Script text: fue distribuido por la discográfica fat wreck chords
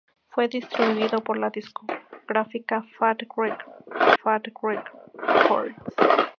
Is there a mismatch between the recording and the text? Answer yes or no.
yes